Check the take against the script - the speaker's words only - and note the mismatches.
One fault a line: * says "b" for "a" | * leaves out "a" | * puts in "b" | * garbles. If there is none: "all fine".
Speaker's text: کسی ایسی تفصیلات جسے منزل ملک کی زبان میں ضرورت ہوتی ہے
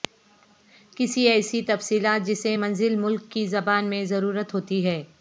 all fine